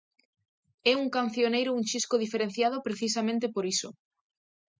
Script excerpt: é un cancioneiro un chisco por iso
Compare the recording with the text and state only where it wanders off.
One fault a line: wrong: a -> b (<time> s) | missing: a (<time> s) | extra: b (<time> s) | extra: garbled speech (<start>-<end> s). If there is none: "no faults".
extra: diferenciado precisamente (2.2 s)